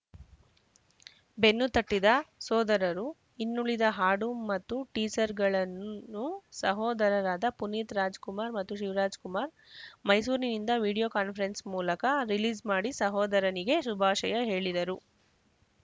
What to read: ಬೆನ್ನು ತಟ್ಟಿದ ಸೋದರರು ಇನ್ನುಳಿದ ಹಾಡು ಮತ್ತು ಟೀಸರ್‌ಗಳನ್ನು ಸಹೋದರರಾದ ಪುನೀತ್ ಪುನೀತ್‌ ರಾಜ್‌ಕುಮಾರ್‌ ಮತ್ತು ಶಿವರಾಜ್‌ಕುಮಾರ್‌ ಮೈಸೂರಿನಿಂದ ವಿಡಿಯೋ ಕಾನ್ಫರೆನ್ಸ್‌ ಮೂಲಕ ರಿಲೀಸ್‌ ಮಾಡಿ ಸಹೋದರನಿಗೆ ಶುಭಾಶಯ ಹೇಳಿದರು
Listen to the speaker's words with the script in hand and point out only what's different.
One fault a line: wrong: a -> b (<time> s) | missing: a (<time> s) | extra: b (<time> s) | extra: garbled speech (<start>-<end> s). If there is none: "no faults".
missing: ಪುನೀತ್ (8.0 s)